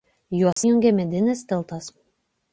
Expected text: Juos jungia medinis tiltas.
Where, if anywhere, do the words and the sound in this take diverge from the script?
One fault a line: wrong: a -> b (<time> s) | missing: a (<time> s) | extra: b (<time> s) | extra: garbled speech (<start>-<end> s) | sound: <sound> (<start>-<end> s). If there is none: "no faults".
sound: dropout (0.5-0.6 s)